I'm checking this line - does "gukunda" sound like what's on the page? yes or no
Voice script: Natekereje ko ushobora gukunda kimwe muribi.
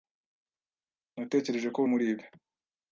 no